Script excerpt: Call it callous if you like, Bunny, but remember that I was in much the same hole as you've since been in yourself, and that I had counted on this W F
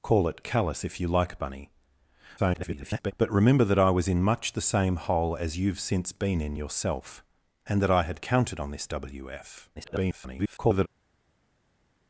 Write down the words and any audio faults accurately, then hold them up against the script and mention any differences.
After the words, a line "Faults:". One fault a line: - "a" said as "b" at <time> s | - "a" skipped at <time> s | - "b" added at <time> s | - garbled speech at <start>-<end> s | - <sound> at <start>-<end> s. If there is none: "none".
Call it callous if you like, Bunny, [garbled] but remember that I was in much the same hole as you've since been in yourself, and that I had counted on this W F [garbled]
Faults:
- garbled speech at 2.4-3.1 s
- garbled speech at 9.8-10.9 s